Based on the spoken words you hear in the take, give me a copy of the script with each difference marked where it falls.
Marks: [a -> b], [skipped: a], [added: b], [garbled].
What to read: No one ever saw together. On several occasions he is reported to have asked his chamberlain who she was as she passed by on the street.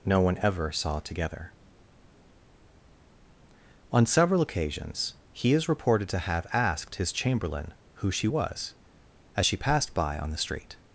No one ever saw together. On several occasions he is reported to have asked his chamberlain who she was as she passed by on the street.